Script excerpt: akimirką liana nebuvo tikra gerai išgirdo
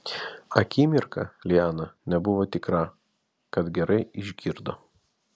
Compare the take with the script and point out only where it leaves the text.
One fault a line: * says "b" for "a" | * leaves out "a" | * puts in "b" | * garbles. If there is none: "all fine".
* puts in "kad"